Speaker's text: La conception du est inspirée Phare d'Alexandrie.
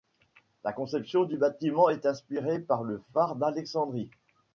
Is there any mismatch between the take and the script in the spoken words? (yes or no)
yes